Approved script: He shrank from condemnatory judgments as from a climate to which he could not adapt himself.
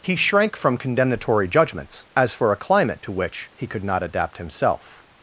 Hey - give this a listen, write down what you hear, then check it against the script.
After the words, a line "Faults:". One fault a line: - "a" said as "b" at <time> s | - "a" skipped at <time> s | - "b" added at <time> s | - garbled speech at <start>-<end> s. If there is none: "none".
He shrank from condemnatory judgments as for a climate to which he could not adapt himself.
Faults:
- "from" said as "for" at 2.3 s